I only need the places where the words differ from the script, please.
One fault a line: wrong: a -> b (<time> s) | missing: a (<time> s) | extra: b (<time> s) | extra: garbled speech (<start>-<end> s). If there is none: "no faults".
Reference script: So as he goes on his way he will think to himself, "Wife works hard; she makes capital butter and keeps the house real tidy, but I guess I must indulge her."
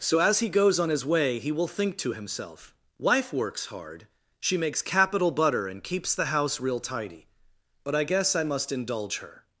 no faults